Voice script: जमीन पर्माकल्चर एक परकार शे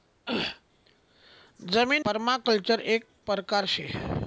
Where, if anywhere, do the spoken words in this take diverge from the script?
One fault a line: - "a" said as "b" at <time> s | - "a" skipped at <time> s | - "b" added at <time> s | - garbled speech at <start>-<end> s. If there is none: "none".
none